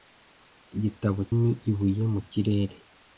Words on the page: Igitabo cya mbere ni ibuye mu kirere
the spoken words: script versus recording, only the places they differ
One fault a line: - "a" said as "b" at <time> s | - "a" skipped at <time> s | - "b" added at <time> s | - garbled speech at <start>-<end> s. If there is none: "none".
- "cya mbere" skipped at 1.2 s